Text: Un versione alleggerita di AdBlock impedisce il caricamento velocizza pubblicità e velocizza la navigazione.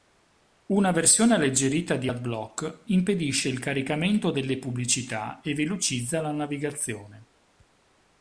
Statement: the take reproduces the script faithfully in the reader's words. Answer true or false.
false